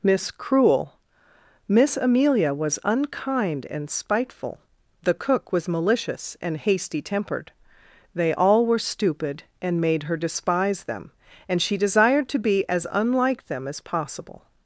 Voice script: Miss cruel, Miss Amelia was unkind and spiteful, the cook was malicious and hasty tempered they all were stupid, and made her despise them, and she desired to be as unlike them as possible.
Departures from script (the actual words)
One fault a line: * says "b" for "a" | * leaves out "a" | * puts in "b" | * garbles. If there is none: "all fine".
all fine